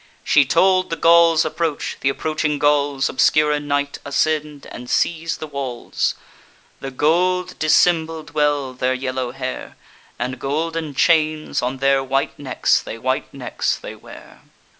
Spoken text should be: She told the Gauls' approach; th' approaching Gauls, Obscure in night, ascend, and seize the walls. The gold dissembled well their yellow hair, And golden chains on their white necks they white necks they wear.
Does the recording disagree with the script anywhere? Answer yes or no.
no